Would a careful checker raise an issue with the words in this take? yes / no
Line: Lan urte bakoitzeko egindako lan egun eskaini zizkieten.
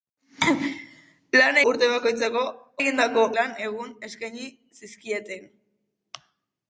no